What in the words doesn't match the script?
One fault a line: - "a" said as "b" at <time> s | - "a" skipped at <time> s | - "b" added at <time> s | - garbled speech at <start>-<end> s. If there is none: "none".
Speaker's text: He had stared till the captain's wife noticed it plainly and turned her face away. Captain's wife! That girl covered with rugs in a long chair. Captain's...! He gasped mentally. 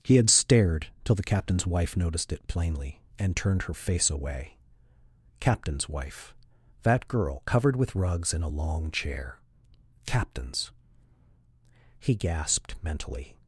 none